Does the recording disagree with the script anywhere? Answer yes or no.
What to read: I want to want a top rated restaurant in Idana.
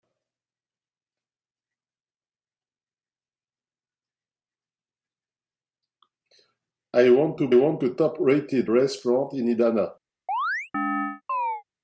no